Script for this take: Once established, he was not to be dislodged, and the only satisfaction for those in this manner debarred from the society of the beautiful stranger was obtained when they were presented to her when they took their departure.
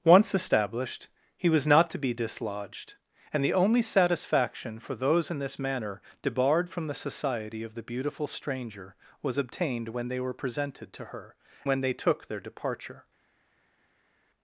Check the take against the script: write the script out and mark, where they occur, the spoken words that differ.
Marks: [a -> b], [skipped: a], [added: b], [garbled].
Once established, he was not to be dislodged, and the only satisfaction for those in this manner debarred from the society of the beautiful stranger was obtained when they were presented to her when they took their departure.